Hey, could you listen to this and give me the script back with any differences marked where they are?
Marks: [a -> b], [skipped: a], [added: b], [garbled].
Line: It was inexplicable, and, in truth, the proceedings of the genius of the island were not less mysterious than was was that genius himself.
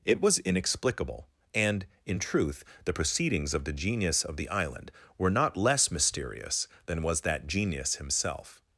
It was inexplicable, and, in truth, the proceedings of the genius of the island were not less mysterious than was [skipped: was] that genius himself.